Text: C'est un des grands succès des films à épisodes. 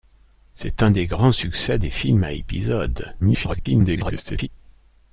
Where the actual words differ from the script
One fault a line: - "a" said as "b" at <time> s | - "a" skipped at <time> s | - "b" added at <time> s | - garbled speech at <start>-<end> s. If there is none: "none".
- garbled speech at 3.2-4.5 s